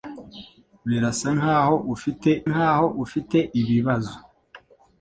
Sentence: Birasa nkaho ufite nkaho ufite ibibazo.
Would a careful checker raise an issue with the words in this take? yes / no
no